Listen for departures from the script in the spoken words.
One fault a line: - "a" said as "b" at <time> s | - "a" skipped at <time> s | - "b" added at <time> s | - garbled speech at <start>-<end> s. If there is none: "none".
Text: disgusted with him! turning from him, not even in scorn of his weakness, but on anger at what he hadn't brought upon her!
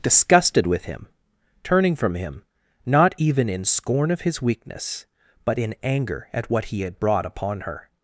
- "on" said as "in" at 5.6 s
- "hadn't" said as "had" at 6.8 s